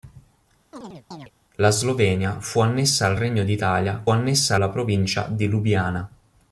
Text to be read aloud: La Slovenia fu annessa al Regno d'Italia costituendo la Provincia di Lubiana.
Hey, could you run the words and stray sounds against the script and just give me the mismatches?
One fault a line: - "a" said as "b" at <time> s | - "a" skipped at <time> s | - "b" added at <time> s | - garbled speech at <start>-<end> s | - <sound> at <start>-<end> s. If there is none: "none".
- chirp at 0.7-1.3 s
- "costituendo" said as "annessa" at 4.1 s